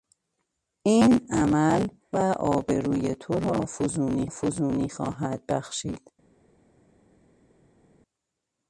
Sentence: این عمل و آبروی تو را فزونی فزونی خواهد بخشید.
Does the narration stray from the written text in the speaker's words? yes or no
no